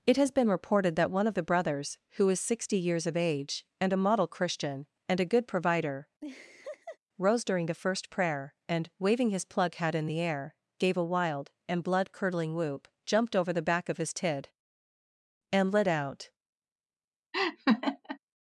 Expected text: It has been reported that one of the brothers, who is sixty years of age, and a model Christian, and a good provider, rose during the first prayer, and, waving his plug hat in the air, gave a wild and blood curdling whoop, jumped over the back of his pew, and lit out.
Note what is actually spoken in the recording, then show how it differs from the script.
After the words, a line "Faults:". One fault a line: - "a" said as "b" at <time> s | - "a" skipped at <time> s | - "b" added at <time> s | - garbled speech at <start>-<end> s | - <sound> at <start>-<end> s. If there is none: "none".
It has been reported that one of the brothers, who is sixty years of age, and a model Christian, and a good provider, rose during the first prayer, and, waving his plug hat in the air, gave a wild and blood curdling whoop, jumped over the back of his tid, and lit out.
Faults:
- laugh at 6.2-7.0 s
- "pew" said as "tid" at 14.1 s
- laugh at 17.3-18.2 s